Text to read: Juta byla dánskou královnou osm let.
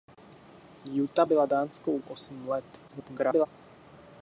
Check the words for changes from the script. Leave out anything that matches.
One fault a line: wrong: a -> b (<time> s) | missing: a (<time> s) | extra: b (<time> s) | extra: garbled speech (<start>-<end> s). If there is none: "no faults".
missing: královnou (2.0 s)
extra: garbled speech (2.9-3.5 s)